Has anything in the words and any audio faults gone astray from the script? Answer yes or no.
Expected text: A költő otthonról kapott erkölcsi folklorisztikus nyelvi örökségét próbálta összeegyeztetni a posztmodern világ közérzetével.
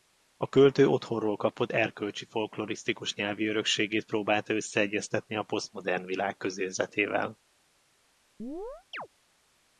yes